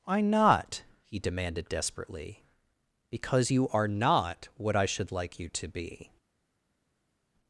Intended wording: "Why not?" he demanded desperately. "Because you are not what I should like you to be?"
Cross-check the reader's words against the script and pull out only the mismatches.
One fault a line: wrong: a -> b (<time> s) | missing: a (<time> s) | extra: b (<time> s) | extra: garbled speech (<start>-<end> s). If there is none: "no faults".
no faults